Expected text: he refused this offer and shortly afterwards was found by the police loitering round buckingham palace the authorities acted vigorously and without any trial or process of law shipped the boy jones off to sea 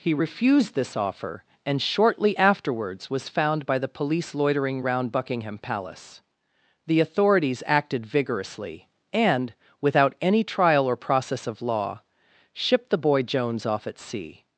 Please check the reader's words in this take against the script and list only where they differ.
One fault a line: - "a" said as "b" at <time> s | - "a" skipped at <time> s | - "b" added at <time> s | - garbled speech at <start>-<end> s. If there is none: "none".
- "to" said as "at" at 13.9 s